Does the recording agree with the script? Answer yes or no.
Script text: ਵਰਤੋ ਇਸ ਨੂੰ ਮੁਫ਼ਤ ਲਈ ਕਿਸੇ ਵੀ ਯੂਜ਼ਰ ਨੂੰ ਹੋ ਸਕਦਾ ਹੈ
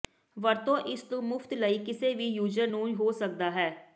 yes